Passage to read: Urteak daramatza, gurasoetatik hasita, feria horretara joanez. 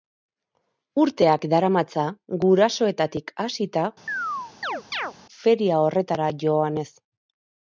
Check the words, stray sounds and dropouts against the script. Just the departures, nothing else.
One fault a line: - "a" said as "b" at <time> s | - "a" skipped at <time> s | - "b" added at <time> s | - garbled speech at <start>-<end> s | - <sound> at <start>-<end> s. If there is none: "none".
- chirp at 4.1-5.1 s